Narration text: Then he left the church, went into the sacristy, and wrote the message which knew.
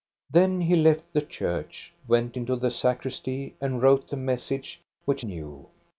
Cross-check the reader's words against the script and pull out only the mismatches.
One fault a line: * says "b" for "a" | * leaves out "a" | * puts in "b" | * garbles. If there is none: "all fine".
all fine